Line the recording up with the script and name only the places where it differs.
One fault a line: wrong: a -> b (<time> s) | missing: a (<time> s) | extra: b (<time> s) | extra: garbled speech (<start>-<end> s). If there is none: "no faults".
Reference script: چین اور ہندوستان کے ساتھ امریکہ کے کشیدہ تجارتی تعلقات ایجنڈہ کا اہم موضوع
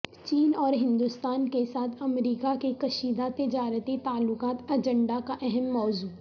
no faults